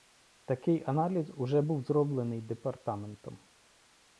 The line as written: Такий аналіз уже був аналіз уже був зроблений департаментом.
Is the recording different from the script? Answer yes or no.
yes